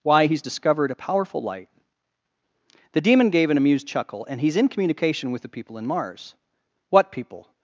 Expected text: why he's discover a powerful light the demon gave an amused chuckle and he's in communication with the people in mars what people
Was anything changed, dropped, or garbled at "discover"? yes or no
yes